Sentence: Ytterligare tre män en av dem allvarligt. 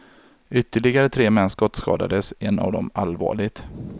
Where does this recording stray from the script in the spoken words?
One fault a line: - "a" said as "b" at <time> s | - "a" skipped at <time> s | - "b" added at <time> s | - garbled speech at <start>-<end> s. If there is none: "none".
- "skottskadades" added at 1.5 s